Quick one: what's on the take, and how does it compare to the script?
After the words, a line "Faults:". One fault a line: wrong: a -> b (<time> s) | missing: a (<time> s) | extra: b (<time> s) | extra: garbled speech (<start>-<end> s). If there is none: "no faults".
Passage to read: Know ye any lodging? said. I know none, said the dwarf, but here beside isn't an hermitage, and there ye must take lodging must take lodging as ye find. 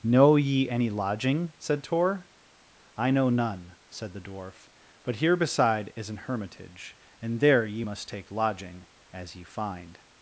Know ye any lodging? said Tor. I know none, said the dwarf, but here beside is an hermitage, and there ye must take lodging as ye find.
Faults:
extra: Tor (1.8 s)
wrong: isn't -> is (5.9 s)
missing: must take lodging (8.9 s)